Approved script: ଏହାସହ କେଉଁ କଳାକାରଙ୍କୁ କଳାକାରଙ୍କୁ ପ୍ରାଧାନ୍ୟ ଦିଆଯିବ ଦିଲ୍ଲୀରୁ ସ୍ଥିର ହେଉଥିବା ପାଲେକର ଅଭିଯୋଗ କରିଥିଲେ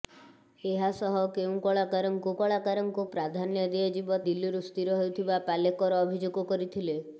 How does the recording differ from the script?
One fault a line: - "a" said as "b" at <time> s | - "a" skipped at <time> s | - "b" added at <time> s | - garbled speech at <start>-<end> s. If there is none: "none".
none